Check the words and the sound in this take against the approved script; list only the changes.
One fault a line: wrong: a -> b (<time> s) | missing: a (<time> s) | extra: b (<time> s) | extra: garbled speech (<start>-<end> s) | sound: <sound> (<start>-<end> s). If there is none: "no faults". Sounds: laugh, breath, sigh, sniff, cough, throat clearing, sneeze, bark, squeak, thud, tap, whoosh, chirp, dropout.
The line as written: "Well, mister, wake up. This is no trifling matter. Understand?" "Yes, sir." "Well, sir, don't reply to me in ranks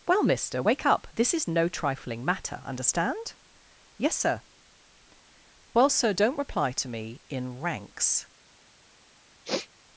sound: sniff (9.4-9.7 s)